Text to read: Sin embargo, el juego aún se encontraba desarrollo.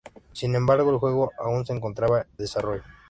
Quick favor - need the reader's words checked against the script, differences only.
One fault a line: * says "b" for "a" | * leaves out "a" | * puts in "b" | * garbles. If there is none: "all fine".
all fine